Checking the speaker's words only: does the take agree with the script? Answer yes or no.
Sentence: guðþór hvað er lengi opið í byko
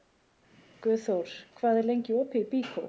yes